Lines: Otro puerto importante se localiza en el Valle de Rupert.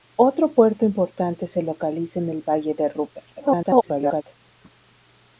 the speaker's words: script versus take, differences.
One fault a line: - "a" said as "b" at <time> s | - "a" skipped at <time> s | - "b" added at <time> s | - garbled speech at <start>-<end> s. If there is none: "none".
- garbled speech at 3.3-4.2 s